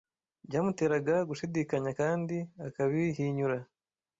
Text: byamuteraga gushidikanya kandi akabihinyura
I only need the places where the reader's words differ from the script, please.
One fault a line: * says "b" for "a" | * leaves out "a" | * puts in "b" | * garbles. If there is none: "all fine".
all fine